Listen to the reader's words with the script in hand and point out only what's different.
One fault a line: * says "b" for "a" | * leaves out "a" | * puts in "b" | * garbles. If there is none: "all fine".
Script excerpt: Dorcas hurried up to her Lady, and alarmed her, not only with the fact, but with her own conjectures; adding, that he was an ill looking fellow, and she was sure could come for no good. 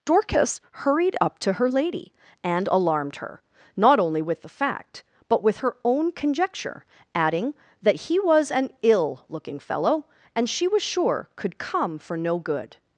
* says "conjecture" for "conjectures"